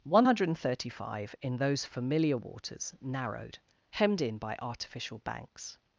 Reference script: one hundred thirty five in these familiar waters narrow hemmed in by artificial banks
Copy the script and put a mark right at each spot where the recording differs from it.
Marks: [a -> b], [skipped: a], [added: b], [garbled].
one hundred thirty five in [these -> those] familiar waters [narrow -> narrowed] hemmed in by artificial banks